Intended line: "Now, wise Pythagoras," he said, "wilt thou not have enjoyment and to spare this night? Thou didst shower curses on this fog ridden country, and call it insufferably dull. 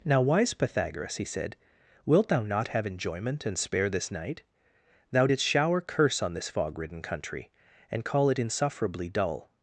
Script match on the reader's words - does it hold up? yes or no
no